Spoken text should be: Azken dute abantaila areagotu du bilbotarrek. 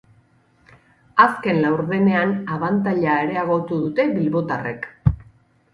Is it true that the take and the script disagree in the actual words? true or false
true